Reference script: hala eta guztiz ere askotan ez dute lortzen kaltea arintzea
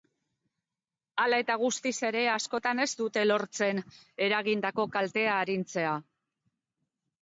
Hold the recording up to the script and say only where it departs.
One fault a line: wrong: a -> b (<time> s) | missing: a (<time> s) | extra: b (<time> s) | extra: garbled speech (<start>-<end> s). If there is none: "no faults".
extra: eragindako (4.3 s)